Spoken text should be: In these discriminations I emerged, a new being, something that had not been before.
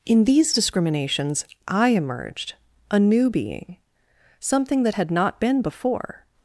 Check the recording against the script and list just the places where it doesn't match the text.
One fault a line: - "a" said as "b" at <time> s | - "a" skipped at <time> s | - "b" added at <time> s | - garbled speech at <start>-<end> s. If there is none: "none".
none